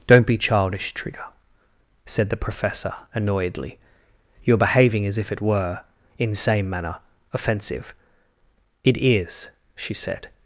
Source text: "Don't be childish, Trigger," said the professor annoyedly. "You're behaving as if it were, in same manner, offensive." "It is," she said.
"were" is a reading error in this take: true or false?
false